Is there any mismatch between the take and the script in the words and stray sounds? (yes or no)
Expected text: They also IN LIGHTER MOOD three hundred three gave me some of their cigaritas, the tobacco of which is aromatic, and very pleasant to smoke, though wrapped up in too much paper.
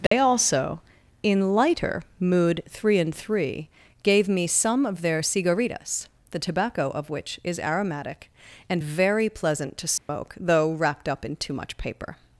yes